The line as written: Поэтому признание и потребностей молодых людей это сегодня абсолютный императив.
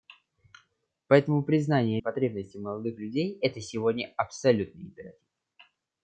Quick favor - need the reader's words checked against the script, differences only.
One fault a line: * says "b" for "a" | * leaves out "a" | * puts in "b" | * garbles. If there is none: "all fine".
all fine